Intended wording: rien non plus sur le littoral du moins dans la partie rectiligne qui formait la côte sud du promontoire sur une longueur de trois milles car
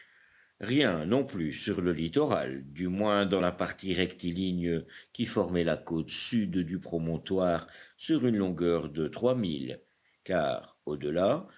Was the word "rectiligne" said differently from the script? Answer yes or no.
no